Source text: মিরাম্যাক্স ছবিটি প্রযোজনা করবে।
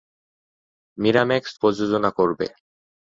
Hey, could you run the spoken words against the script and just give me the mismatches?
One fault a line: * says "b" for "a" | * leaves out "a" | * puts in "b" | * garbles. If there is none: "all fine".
* leaves out "ছবিটি"